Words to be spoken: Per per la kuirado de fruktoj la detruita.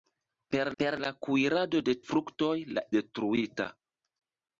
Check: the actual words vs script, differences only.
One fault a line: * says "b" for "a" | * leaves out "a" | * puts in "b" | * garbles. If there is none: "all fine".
all fine